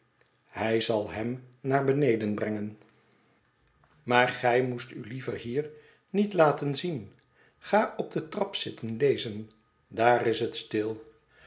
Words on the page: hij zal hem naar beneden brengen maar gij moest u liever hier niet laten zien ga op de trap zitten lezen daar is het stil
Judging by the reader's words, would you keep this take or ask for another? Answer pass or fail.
pass